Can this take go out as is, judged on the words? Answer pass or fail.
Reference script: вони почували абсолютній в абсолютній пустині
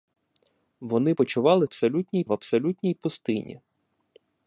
pass